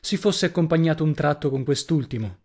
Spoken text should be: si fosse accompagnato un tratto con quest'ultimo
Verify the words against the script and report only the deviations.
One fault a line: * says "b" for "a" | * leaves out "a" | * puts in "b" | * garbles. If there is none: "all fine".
all fine